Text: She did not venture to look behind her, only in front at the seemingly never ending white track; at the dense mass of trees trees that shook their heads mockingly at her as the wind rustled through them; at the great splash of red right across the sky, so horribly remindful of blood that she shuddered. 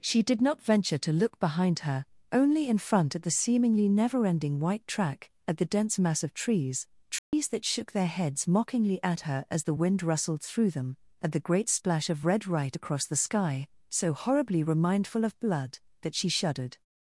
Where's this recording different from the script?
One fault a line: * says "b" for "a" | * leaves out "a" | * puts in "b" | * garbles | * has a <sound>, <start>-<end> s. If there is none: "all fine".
* has a dropout, 7.2-7.3 s